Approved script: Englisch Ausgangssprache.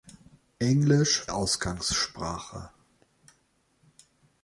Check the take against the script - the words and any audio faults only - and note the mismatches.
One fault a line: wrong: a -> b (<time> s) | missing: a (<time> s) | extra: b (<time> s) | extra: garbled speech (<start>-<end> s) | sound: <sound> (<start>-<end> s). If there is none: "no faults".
no faults